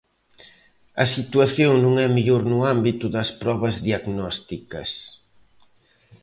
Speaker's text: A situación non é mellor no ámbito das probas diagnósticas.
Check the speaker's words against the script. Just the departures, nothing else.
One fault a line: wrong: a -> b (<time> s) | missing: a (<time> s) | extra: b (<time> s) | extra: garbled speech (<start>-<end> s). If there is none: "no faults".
no faults